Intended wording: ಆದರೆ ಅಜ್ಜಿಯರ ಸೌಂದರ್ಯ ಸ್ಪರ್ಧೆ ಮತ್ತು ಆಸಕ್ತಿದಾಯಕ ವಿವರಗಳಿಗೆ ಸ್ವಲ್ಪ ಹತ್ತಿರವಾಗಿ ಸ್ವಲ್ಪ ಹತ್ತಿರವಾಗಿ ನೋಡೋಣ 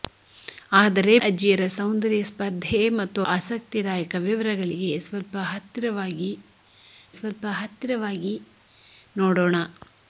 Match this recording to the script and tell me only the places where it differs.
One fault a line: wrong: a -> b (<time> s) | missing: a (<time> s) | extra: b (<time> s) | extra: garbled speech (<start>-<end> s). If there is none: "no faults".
no faults